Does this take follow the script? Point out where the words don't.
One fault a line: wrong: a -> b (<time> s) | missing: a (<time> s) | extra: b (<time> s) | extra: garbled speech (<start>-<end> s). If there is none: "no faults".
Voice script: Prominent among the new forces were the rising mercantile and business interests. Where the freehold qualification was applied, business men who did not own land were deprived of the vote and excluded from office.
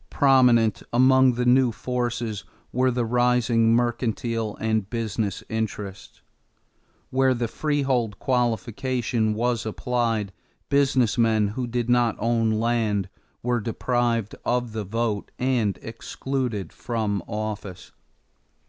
no faults